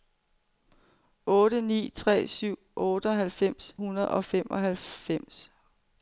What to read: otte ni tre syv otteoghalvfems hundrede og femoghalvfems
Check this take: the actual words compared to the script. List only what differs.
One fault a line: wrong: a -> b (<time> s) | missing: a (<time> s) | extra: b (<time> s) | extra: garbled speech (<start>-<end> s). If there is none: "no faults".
no faults